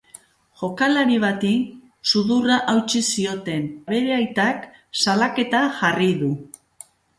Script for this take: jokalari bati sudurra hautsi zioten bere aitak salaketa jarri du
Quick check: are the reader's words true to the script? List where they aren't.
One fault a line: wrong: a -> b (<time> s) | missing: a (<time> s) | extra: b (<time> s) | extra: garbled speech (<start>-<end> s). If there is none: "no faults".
no faults